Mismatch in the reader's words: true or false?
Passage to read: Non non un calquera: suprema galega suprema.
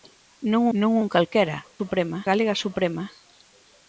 false